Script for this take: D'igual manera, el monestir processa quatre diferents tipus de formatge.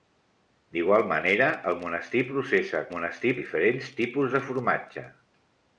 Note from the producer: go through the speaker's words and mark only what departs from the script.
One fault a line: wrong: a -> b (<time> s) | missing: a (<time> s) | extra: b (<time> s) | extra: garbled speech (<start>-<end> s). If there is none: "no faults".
wrong: quatre -> monestir (2.9 s)